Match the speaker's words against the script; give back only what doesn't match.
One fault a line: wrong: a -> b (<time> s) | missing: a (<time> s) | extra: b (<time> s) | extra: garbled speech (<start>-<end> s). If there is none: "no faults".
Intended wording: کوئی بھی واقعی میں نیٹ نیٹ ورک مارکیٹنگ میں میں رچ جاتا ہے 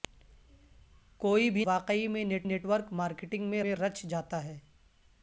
no faults